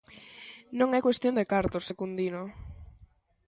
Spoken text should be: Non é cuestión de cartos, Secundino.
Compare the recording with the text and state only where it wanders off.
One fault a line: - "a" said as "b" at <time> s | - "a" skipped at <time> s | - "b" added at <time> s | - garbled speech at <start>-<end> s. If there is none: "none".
none